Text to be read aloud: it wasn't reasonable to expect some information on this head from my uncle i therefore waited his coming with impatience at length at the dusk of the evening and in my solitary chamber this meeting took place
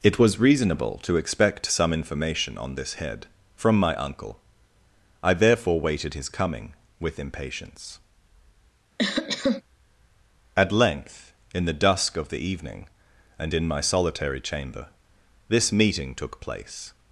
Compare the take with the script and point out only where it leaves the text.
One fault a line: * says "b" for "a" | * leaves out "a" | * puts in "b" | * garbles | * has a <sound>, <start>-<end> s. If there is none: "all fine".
* says "was" for "wasn't"
* has a cough, 9.0-9.6 s
* says "in" for "at"